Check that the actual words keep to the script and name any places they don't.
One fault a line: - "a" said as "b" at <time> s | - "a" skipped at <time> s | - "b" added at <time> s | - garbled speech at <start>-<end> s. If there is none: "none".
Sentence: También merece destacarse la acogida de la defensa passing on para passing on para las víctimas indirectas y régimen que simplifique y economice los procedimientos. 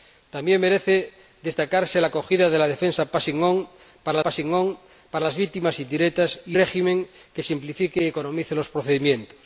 none